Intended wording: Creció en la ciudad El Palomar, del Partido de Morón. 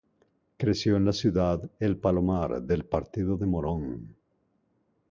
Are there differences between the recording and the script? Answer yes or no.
no